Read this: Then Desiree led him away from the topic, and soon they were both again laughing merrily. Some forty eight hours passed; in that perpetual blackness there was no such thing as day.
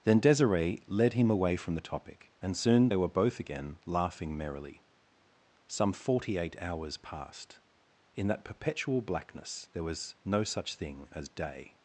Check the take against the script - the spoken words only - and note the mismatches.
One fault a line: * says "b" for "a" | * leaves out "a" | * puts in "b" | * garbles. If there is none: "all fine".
all fine